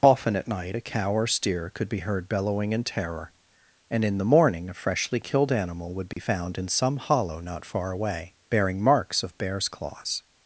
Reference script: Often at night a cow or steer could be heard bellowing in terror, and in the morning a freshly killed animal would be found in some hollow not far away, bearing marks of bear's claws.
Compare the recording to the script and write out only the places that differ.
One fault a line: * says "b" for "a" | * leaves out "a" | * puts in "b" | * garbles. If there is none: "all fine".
all fine